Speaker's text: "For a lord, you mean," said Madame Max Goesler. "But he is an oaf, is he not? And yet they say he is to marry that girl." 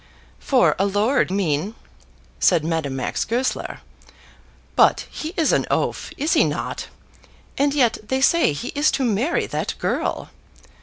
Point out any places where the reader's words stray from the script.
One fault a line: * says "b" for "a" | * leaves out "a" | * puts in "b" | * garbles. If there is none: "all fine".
* leaves out "you"